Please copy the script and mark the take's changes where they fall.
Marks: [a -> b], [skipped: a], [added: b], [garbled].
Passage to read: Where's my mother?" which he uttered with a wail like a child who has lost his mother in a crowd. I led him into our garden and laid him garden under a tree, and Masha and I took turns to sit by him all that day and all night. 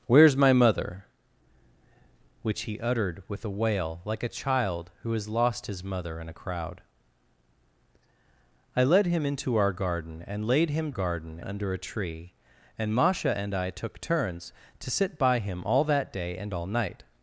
Where's my mother?" which he uttered with a wail like a child who has lost his mother in a crowd. I led him into our garden and laid him garden under a tree, and Masha and I took turns to sit by him all that day and all night.